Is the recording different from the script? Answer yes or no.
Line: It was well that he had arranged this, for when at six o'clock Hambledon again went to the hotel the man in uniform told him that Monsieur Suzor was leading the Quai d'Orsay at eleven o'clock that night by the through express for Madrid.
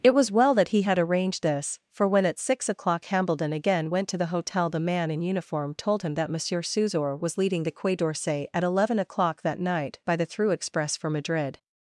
no